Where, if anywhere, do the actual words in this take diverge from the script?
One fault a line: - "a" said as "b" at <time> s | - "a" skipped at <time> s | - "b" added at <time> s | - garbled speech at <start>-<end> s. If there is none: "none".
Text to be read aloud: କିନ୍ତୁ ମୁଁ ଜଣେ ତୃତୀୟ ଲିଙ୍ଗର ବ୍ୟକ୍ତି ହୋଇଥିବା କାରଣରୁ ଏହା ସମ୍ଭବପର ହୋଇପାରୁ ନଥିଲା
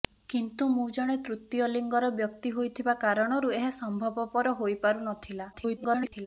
- garbled speech at 5.5-6.3 s